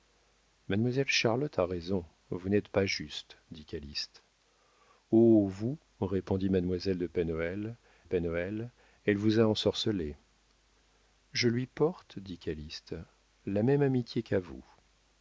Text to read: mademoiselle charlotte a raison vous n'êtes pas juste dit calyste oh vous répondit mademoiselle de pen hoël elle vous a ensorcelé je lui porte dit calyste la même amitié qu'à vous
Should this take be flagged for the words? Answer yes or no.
yes